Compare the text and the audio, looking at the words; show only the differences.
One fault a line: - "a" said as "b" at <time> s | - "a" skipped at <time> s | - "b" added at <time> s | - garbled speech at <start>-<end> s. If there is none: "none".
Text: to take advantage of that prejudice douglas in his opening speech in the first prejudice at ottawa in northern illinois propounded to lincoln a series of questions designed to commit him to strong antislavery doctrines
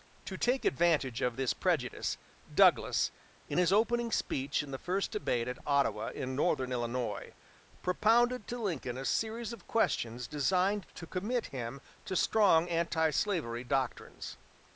- "that" said as "this" at 1.4 s
- "prejudice" said as "debate" at 5.1 s